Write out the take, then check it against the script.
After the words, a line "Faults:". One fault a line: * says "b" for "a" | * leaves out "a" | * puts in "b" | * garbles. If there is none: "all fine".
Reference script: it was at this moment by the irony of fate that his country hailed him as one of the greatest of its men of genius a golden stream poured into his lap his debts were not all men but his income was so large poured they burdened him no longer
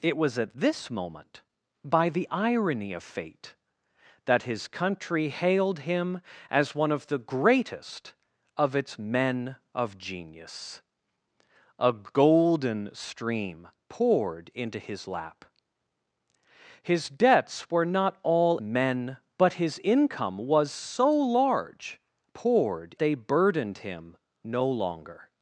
it was at this moment by the irony of fate that his country hailed him as one of the greatest of its men of genius a golden stream poured into his lap his debts were not all men but his income was so large poured they burdened him no longer
Faults:
all fine